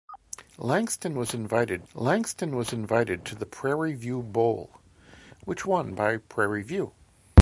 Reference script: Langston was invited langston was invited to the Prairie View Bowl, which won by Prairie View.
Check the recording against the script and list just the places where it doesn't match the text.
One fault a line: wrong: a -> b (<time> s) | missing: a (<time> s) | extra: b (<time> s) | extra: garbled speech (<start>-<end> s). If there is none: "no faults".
no faults